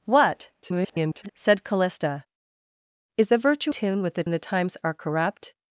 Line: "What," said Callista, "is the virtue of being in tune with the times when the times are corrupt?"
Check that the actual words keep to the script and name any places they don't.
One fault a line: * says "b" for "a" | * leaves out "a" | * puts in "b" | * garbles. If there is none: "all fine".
* garbles
* leaves out "of being in"
* leaves out "times when"